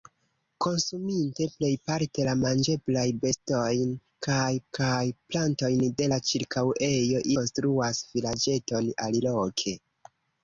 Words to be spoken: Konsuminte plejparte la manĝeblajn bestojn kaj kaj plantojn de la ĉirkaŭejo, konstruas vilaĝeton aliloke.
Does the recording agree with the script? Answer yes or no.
yes